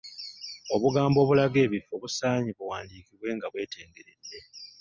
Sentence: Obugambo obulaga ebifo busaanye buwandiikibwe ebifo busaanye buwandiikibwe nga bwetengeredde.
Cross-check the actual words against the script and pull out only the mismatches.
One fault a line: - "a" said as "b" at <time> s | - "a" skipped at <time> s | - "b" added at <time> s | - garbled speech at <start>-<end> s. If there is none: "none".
- "ebifo busaanye buwandiikibwe" skipped at 3.3 s